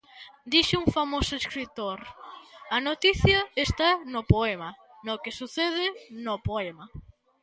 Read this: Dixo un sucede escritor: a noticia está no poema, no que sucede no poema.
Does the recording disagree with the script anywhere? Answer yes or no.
yes